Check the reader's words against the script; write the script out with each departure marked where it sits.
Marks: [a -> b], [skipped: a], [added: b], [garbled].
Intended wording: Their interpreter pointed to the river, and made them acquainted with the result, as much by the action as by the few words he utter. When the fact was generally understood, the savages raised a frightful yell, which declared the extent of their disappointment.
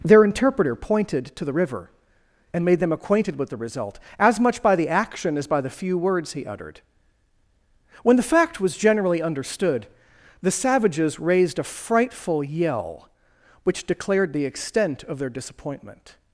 Their interpreter pointed to the river, and made them acquainted with the result, as much by the action as by the few words he [utter. -> uttered] When the fact was generally understood, the savages raised a frightful yell, which declared the extent of their disappointment.